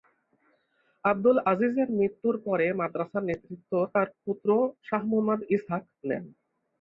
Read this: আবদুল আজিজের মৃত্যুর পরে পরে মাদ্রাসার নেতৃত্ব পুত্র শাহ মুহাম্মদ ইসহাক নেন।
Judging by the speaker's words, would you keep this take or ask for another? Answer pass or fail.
fail